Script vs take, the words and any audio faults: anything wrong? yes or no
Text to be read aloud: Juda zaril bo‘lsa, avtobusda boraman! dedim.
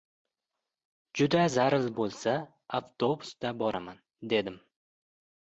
no